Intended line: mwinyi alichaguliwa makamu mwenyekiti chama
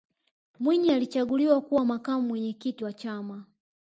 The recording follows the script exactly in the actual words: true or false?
false